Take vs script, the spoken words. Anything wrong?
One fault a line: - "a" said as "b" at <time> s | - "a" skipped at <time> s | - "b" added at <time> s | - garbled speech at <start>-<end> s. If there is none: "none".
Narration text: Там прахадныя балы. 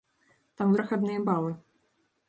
none